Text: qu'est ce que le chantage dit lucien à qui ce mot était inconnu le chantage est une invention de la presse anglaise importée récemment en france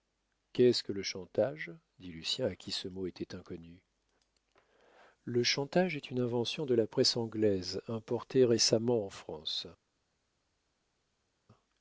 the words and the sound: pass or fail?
pass